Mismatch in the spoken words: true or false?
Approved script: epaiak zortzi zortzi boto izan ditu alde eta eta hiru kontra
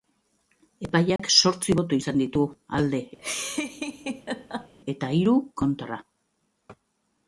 true